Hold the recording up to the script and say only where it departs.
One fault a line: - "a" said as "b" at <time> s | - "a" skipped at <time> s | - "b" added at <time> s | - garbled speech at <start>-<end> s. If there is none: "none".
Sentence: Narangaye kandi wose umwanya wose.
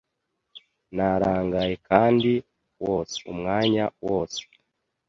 none